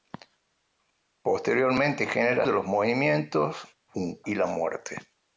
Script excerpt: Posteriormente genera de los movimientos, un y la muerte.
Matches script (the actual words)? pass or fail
pass